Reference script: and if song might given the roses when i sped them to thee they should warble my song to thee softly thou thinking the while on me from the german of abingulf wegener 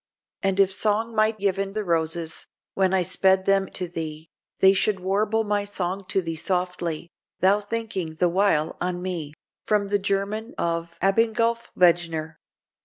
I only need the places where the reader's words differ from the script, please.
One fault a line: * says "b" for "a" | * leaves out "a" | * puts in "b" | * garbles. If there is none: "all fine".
all fine